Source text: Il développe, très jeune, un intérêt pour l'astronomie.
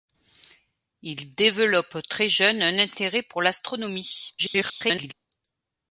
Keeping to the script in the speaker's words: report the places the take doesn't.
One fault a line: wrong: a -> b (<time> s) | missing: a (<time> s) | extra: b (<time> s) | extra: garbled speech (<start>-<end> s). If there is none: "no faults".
extra: garbled speech (4.4-5.1 s)